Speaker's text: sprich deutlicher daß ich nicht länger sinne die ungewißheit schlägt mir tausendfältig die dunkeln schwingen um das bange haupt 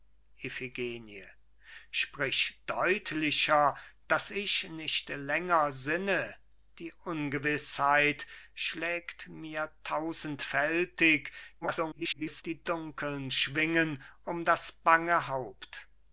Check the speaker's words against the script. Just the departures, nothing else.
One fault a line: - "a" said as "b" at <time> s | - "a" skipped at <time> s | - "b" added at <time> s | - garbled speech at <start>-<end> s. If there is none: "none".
- garbled speech at 11.6-12.4 s